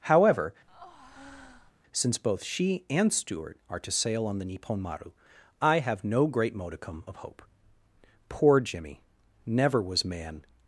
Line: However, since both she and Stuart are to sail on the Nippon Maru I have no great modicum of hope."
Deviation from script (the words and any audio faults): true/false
true